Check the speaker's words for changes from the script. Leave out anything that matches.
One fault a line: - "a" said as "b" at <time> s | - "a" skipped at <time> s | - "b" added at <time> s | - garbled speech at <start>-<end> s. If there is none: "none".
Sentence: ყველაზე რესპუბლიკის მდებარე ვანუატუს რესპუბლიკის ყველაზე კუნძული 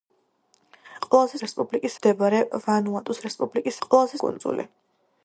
none